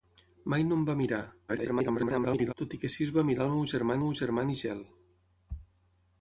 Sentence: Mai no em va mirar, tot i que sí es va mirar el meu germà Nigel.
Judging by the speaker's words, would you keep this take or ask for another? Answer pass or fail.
fail